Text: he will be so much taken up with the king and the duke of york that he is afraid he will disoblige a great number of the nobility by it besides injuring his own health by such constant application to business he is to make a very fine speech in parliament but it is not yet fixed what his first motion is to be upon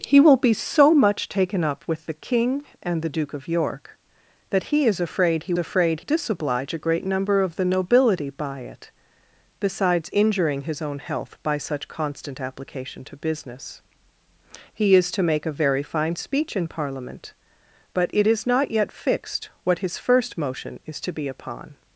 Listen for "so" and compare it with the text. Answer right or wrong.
right